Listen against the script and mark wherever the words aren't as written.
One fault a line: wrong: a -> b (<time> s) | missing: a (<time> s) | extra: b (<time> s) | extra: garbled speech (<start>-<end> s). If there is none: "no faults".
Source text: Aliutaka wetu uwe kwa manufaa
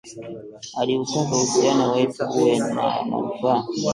extra: uhusiano (1.4 s)
wrong: kwa -> na (2.6 s)